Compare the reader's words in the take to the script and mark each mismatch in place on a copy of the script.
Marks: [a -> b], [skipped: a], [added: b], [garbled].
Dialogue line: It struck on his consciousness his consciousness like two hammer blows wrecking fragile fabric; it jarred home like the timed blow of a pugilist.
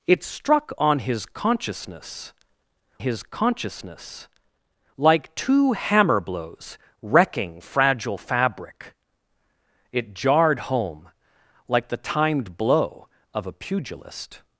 It struck on his consciousness his consciousness like two hammer blows wrecking fragile fabric; it jarred home like the timed blow of a pugilist.